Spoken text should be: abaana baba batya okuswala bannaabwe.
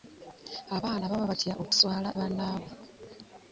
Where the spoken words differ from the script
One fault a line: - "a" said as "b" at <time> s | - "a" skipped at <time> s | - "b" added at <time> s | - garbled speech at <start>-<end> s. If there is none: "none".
none